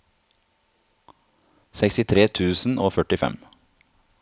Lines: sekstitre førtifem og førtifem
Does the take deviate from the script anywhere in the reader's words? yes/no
yes